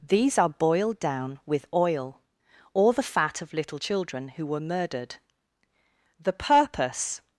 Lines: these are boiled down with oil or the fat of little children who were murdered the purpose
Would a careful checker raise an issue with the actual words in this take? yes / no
no